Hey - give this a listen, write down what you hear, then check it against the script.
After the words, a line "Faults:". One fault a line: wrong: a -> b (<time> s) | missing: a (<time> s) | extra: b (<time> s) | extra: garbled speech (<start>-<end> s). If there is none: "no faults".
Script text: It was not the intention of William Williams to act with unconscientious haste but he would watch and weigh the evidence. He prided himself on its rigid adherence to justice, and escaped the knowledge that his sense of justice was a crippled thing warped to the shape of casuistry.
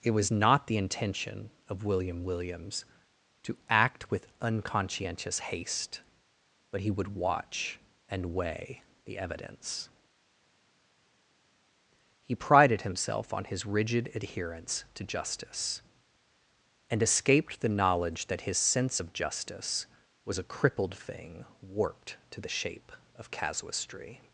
It was not the intention of William Williams to act with unconscientious haste but he would watch and weigh the evidence. He prided himself on his rigid adherence to justice, and escaped the knowledge that his sense of justice was a crippled thing warped to the shape of casuistry.
Faults:
wrong: its -> his (13.4 s)